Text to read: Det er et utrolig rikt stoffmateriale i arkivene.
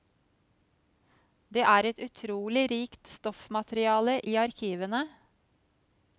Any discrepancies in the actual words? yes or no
no